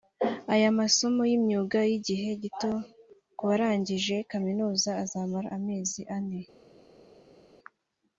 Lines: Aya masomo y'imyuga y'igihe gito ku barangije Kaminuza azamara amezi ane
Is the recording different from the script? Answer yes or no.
no